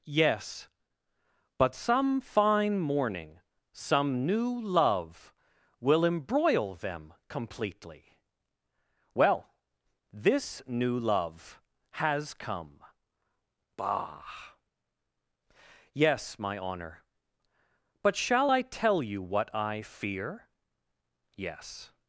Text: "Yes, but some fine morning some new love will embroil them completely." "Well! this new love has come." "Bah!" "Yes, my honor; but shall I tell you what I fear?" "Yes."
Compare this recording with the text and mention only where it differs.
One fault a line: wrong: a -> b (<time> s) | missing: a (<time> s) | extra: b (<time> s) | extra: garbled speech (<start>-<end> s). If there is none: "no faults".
no faults